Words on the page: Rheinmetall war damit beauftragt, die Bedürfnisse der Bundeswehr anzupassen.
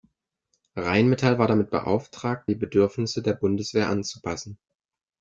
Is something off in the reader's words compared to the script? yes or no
no